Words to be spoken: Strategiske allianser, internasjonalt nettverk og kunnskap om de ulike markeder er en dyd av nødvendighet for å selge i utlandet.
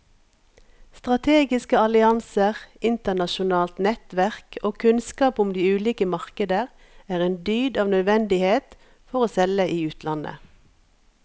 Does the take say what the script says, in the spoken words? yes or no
yes